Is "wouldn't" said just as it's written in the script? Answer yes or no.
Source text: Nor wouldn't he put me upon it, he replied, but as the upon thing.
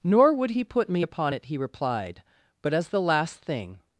no